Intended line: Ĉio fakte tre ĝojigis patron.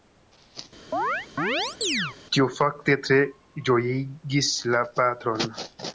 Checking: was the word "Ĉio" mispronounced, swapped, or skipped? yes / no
yes